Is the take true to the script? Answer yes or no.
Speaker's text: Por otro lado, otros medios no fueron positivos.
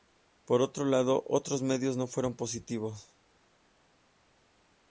yes